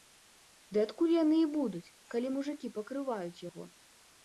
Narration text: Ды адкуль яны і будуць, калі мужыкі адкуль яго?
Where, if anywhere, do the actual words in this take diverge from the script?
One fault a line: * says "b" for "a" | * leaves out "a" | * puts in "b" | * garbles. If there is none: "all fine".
* says "пакрываюць" for "адкуль"